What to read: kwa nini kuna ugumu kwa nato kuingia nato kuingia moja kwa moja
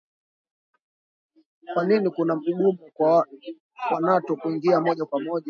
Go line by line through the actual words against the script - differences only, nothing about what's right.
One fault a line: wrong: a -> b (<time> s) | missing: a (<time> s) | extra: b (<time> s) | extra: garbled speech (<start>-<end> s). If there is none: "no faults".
missing: nato kuingia (4.8 s)